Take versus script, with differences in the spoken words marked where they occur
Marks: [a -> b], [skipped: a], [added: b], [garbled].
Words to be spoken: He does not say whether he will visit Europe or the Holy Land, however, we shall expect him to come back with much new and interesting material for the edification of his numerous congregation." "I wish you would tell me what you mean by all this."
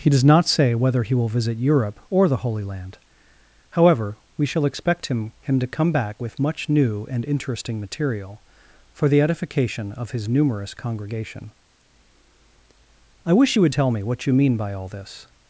He does not say whether he will visit Europe or the Holy Land, however, we shall expect him [added: him] to come back with much new and interesting material for the edification of his numerous congregation." "I wish you would tell me what you mean by all this."